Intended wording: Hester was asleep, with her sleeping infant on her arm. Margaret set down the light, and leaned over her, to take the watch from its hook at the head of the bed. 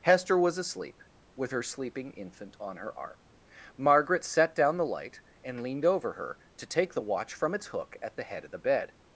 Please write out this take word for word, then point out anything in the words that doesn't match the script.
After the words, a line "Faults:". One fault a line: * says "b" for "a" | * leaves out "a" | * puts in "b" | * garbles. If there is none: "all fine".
Hester was asleep, with her sleeping infant on her arm. Margaret set down the light, and leaned over her, to take the watch from its hook at the head of the bed.
Faults:
all fine